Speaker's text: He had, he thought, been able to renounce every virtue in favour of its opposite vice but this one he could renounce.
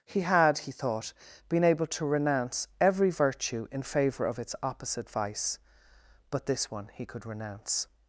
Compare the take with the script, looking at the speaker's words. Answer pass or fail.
pass